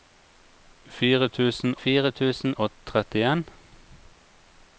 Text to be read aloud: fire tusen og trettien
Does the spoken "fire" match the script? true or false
true